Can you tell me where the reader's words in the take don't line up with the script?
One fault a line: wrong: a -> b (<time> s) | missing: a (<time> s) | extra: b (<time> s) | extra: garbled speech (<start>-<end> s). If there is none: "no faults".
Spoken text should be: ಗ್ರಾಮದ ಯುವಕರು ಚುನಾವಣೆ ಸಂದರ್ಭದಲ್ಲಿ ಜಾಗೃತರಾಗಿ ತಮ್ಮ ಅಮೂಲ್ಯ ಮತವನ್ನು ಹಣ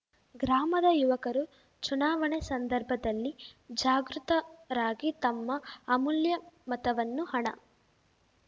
no faults